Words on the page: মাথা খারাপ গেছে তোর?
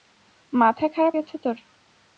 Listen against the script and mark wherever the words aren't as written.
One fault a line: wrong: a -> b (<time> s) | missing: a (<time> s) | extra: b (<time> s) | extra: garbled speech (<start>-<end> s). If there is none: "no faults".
no faults